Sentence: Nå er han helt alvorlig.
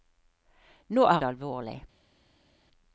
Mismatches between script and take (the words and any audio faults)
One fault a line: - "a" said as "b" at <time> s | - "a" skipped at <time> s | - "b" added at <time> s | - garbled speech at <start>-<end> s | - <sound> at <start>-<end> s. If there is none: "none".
- "han helt" skipped at 1.2 s